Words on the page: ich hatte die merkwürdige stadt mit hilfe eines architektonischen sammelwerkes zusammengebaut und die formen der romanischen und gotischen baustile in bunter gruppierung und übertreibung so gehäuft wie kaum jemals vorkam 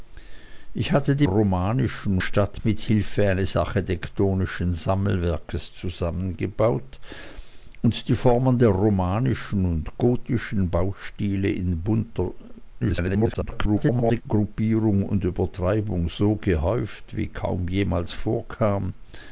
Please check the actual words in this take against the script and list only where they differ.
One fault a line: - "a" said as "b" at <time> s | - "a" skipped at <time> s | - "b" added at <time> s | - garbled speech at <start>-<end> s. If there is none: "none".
- "merkwürdige" said as "romanischen" at 1.2 s
- garbled speech at 12.8-14.2 s